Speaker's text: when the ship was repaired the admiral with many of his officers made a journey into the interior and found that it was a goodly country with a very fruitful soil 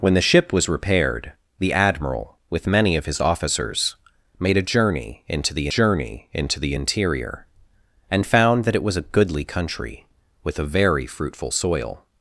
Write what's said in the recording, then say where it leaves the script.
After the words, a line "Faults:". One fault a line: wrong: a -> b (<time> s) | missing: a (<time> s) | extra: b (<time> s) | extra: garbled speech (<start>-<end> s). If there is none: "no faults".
when the ship was repaired the admiral with many of his officers made a journey into the journey into the interior and found that it was a goodly country with a very fruitful soil
Faults:
extra: journey into the (5.7 s)